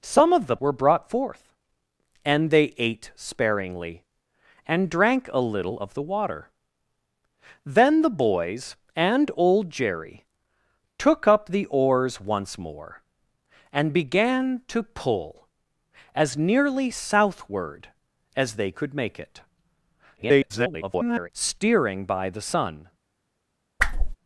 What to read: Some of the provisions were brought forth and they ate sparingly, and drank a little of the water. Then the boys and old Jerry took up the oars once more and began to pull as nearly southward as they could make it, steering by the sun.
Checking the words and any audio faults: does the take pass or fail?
fail